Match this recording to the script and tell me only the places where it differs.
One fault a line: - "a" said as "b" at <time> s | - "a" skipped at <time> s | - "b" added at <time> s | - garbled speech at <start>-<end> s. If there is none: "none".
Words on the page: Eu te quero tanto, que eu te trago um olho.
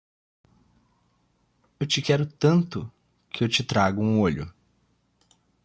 none